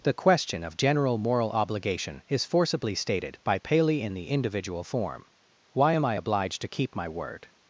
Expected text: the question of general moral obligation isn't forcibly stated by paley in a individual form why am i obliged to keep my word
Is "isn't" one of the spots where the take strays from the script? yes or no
yes